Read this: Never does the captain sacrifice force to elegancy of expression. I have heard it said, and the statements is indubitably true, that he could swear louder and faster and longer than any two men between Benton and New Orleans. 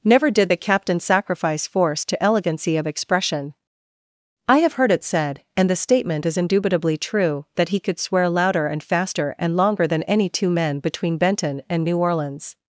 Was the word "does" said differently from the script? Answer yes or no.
yes